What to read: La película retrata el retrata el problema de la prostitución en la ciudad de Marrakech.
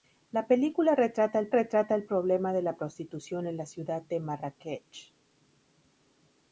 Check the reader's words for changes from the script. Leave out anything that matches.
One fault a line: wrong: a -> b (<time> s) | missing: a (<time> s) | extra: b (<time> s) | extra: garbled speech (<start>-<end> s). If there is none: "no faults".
no faults